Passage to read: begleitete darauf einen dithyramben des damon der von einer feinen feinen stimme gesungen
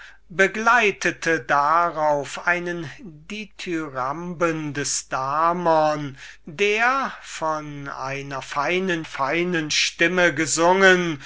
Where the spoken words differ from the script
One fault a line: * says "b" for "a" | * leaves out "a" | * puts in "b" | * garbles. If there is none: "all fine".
all fine